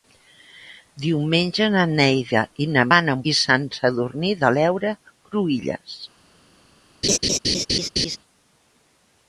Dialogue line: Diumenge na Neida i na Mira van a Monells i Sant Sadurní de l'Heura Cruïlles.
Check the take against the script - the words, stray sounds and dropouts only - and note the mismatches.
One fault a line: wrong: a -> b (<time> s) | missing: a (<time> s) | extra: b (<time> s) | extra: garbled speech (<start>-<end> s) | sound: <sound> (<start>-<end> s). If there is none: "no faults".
missing: Mira (2.9 s)
missing: Monells (3.2 s)
sound: laugh (7.0-8.2 s)